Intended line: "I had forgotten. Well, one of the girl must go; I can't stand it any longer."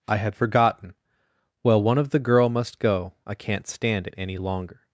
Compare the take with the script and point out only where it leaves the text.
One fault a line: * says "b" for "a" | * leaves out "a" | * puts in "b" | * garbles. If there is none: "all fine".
all fine